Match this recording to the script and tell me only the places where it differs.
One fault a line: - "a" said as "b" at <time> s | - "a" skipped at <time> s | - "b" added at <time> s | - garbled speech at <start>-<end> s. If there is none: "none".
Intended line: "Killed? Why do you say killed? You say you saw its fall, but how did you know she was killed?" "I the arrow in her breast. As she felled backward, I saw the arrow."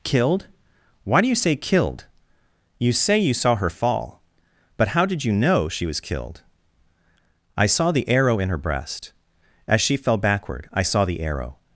- "its" said as "her" at 3.5 s
- "saw" added at 7.7 s
- "felled" said as "fell" at 10.0 s